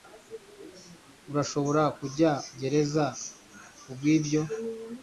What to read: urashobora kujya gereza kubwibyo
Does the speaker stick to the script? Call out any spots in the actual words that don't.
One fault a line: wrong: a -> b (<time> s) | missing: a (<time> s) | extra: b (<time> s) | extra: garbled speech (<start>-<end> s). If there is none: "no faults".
no faults